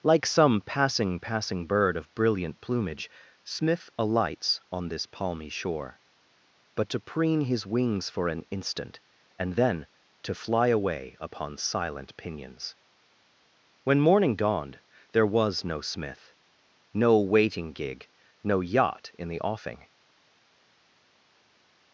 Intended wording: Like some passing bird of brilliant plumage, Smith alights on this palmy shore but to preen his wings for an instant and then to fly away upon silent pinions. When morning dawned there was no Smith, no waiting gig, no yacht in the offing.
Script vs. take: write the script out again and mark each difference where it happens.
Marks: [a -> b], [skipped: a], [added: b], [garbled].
Like some passing [added: passing] bird of brilliant plumage, Smith alights on this palmy shore but to preen his wings for an instant and then to fly away upon silent pinions. When morning dawned there was no Smith, no waiting gig, no yacht in the offing.